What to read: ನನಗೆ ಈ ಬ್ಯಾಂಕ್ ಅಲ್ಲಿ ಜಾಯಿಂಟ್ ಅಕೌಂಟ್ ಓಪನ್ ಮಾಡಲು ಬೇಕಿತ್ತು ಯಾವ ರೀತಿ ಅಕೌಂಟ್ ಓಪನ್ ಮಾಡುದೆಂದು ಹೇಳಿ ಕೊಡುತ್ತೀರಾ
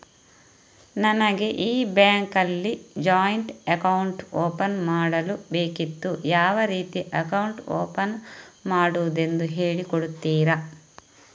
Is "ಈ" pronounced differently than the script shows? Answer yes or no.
no